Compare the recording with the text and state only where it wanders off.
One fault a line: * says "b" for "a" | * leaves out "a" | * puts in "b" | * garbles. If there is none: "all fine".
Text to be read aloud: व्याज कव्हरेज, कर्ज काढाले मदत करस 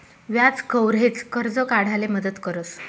all fine